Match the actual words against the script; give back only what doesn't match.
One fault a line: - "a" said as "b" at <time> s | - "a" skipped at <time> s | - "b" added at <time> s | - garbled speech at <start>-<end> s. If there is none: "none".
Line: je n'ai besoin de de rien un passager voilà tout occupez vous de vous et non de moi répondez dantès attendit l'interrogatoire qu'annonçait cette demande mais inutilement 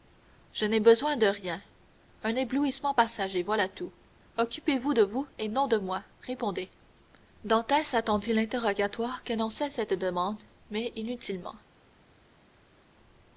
- "de" skipped at 1.3 s
- "éblouissement" added at 2.4 s